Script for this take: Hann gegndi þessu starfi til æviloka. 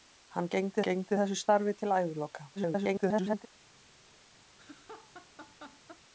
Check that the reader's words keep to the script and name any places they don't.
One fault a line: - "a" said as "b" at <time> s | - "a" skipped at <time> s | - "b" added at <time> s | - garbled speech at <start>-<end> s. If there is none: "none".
- "gegndi" added at 0.9 s
- garbled speech at 2.6-3.5 s